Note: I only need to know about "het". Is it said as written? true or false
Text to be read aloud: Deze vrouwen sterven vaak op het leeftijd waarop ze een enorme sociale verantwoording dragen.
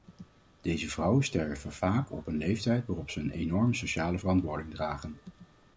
false